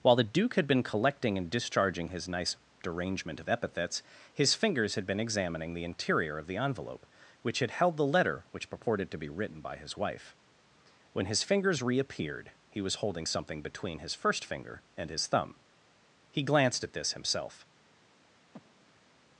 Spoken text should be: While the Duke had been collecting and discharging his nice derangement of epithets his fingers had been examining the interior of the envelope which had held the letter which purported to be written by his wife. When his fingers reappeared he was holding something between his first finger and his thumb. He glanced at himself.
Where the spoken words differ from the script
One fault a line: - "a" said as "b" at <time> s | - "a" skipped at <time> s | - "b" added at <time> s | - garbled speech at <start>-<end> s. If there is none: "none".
- "this" added at 16.9 s